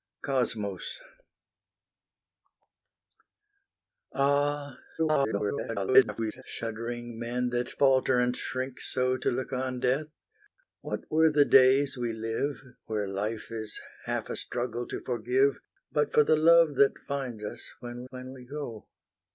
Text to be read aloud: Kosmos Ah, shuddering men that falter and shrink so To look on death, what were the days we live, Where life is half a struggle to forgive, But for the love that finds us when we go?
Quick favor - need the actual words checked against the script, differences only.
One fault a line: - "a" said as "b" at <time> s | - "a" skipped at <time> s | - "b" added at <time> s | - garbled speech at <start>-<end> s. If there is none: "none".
- garbled speech at 5.0-6.4 s
- "when" added at 18.1 s